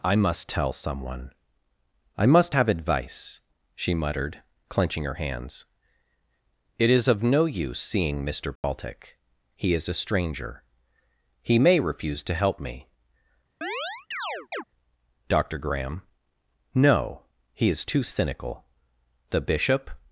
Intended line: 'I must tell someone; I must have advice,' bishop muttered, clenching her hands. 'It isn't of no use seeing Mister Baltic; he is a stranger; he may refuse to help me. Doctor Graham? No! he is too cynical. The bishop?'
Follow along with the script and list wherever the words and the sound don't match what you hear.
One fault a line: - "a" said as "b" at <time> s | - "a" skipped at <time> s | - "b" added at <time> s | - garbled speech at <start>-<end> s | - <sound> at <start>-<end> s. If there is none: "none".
- "bishop" said as "she" at 3.7 s
- "isn't" said as "is" at 6.9 s
- dropout at 8.6-8.6 s
- chirp at 13.6-14.6 s